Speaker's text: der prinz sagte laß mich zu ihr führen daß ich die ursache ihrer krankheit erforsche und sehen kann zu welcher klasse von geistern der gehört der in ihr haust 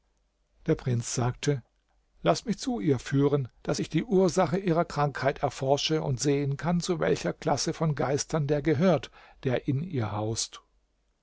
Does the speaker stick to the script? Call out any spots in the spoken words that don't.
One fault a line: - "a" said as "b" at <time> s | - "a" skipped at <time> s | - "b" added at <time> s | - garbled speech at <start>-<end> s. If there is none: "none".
none